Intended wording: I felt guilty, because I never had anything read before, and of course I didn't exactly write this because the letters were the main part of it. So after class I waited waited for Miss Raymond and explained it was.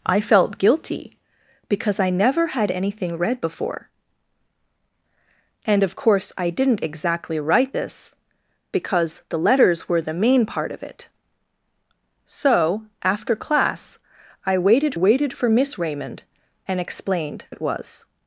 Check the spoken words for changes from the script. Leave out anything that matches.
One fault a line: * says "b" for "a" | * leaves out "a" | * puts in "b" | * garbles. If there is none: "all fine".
all fine